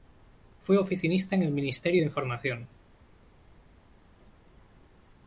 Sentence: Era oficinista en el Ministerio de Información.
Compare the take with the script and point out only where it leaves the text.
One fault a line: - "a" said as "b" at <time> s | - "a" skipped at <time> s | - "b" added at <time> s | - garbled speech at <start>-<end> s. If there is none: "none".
- "Era" said as "Fue" at 0.6 s